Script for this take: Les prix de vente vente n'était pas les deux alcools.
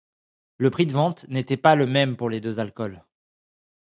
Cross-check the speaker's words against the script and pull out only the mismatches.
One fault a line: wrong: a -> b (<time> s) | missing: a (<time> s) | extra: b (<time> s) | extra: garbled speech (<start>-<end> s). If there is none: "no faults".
wrong: Les -> Le (0.6 s)
missing: vente (1.3 s)
extra: le même pour (1.8 s)